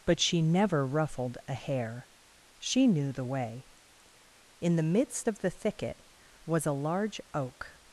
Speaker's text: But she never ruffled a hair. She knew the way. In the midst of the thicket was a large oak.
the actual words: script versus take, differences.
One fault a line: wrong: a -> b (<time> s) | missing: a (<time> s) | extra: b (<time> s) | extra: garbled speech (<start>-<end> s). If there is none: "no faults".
no faults